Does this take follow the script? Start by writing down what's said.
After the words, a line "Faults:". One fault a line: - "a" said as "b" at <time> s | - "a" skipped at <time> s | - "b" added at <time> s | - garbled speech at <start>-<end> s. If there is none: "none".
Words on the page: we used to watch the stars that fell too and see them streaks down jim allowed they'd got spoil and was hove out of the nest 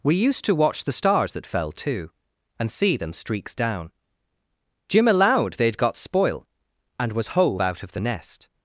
we used to watch the stars that fell too and see them streaks down jim allowed they'd got spoil and was hove out of the nest
Faults:
none